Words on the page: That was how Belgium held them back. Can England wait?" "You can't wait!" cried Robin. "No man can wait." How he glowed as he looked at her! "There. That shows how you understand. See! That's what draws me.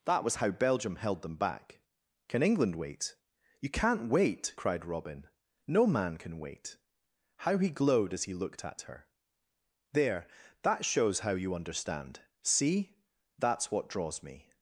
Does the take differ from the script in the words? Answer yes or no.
no